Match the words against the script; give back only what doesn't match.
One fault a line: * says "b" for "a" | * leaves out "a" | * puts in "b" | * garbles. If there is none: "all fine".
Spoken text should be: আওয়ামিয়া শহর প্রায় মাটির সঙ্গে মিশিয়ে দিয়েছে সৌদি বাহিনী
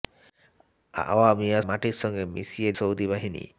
* leaves out "শহর প্রায়"
* leaves out "দিয়েছে"